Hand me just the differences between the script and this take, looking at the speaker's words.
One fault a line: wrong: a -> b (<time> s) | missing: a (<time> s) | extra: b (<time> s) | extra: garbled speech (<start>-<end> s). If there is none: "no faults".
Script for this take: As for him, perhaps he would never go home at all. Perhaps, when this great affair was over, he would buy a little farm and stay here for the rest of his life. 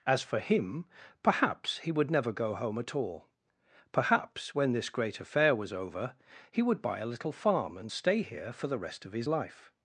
no faults